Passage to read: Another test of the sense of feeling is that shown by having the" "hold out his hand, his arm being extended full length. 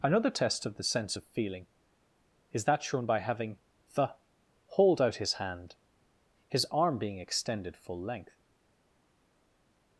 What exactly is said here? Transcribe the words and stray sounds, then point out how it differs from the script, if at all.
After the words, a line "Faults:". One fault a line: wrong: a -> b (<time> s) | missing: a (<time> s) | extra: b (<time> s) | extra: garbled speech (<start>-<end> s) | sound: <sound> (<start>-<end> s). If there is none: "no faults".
Another test of the sense of feeling is that shown by having the" "hold out his hand, his arm being extended full length.
Faults:
no faults